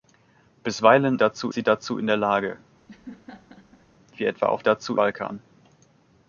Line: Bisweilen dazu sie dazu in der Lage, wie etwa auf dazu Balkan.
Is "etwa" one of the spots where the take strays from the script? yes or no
no